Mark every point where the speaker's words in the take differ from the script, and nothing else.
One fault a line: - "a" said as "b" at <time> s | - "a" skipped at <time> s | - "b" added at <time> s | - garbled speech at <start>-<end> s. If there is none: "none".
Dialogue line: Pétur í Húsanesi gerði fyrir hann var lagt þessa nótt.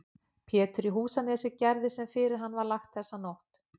- "sem" added at 2.0 s